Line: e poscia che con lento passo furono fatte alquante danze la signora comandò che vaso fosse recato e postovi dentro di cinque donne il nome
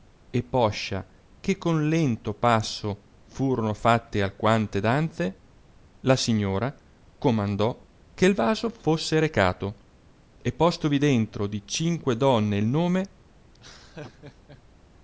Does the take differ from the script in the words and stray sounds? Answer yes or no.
yes